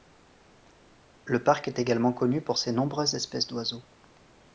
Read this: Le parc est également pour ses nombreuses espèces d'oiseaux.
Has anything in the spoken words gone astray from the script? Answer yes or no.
yes